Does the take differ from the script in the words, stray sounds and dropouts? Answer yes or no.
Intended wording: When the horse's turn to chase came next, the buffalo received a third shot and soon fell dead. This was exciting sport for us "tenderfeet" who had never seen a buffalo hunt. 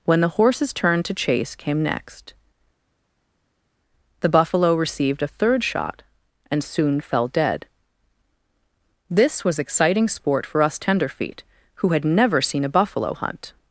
no